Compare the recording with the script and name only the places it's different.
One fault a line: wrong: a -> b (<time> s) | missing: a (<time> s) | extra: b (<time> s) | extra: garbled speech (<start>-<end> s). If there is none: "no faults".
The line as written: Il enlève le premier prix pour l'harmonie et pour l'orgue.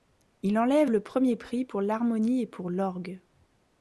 no faults